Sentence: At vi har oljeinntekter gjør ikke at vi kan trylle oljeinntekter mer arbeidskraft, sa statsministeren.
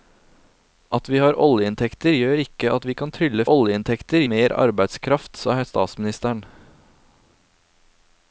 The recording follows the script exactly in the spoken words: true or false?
true